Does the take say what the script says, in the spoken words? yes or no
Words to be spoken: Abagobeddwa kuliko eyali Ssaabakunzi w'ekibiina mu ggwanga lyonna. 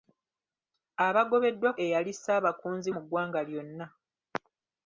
no